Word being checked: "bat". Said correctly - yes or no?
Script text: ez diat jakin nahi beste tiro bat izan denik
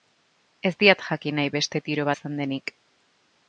no